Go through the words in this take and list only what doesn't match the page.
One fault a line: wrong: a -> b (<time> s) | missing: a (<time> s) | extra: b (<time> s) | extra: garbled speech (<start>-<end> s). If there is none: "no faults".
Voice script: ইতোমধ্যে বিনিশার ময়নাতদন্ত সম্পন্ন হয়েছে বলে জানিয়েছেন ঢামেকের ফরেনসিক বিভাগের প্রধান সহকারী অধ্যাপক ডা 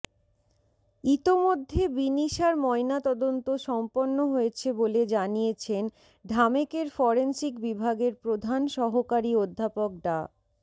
no faults